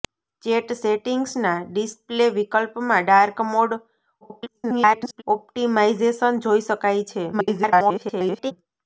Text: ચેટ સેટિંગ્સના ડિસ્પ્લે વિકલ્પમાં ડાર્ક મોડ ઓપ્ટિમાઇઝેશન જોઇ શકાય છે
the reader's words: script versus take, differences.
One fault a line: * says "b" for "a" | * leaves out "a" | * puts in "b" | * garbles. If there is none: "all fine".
* garbles
* garbles